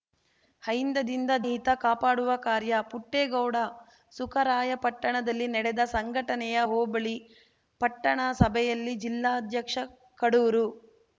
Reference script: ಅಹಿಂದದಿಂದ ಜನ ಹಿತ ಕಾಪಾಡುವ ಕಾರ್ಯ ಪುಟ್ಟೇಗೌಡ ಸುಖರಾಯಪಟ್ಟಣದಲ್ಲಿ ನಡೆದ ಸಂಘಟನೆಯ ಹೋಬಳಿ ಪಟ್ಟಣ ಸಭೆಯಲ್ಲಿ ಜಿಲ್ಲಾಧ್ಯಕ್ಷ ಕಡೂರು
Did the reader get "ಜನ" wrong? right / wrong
wrong